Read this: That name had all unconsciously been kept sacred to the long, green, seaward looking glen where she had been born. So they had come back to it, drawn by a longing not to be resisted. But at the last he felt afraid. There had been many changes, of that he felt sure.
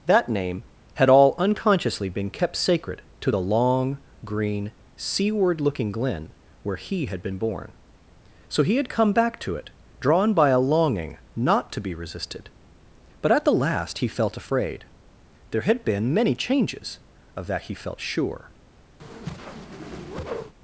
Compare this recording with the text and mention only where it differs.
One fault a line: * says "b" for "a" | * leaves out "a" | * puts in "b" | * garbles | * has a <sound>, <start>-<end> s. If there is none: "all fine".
* says "he" for "she"
* says "he" for "they"
* has a whoosh, 19.0-20.5 s